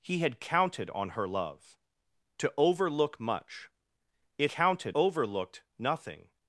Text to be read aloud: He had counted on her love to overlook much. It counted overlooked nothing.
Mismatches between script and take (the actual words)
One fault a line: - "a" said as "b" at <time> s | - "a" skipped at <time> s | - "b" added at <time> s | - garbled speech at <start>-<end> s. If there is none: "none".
none